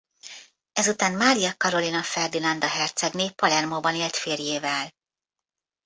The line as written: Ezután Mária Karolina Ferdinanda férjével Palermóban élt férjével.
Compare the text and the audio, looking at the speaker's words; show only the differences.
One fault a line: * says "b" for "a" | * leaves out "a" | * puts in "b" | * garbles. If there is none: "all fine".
* says "hercegné" for "férjével"